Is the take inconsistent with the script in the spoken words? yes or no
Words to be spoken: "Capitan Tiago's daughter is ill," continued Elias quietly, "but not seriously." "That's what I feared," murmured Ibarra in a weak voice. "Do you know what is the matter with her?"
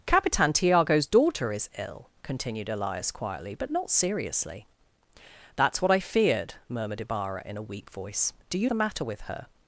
yes